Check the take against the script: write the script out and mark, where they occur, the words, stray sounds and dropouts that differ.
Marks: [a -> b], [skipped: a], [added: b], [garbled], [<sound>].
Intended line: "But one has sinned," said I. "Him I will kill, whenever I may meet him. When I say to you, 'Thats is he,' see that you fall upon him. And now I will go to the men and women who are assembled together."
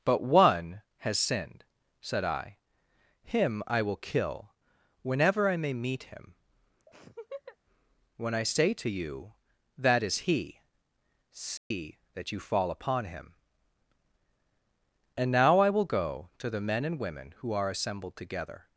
"But one has sinned," said I. "Him I will kill, whenever I may meet him. [laugh] When I say to you, ['Thats -> That] is he,' see [dropout] that you fall upon him. And now I will go to the men and women who are assembled together."